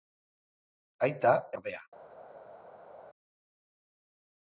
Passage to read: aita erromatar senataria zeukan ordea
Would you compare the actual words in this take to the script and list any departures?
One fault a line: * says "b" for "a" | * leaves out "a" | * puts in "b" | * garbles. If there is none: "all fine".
* leaves out "erromatar senataria zeukan"